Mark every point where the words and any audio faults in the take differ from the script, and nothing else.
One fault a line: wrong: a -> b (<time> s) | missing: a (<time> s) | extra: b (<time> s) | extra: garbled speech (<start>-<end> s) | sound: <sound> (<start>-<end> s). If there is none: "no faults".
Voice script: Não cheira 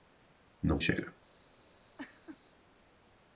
sound: laugh (2.0-2.4 s)